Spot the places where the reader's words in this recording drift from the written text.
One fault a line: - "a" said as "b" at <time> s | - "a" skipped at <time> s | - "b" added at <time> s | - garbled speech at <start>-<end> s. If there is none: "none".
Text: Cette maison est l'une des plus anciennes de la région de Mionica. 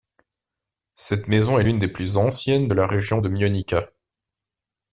none